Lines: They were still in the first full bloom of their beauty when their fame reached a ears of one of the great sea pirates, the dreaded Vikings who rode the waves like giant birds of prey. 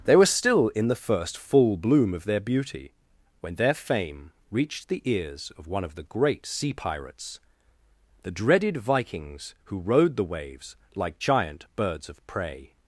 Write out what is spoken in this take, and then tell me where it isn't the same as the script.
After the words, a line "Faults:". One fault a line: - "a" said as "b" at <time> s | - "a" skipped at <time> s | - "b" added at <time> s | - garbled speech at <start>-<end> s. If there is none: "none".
They were still in the first full bloom of their beauty when their fame reached the ears of one of the great sea pirates, the dreaded Vikings who rode the waves like giant birds of prey.
Faults:
- "a" said as "the" at 4.9 s